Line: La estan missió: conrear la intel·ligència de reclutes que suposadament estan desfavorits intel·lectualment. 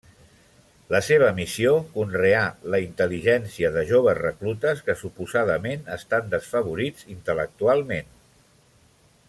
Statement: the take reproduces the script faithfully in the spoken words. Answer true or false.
false